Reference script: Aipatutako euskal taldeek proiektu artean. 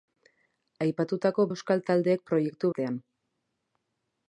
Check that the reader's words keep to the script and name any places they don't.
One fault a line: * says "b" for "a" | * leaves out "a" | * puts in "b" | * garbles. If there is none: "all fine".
all fine